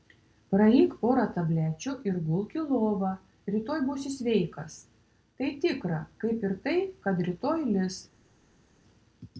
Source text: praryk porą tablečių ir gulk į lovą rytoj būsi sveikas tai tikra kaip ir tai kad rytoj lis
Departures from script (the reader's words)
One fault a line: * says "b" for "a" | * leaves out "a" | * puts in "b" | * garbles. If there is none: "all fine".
all fine